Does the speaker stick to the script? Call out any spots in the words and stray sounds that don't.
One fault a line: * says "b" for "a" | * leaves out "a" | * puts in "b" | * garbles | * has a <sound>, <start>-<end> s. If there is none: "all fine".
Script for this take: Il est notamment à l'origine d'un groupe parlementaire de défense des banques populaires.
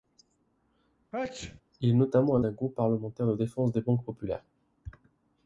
* has a sneeze, 1.1-1.6 s
* leaves out "l'origine"